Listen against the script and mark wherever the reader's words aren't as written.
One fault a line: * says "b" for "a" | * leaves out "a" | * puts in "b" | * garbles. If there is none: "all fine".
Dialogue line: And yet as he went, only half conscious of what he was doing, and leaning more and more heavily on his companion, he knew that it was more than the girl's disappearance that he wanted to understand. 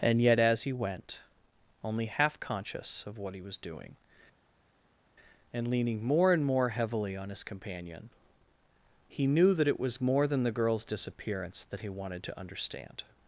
all fine